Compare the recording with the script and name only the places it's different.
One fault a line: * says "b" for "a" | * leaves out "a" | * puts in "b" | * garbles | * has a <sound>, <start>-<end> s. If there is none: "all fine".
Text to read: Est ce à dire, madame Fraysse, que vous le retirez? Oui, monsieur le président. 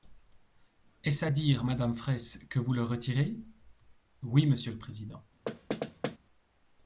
* has a thud, 5.5-6.2 s